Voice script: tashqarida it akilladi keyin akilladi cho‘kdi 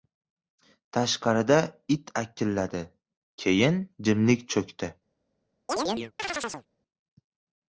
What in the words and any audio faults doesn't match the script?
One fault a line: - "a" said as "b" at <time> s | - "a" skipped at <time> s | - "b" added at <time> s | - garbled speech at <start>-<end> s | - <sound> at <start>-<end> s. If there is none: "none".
- "akilladi" said as "jimlik" at 4.1 s
- chirp at 5.7-6.7 s